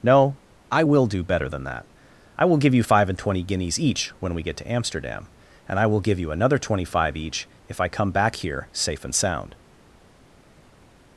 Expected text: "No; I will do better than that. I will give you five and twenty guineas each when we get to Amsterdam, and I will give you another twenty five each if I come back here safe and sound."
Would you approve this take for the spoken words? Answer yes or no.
yes